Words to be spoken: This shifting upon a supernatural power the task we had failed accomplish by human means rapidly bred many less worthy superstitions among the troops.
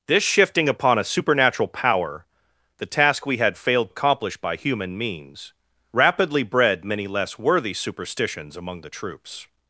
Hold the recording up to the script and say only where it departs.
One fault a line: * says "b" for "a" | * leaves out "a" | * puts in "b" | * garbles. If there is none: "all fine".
all fine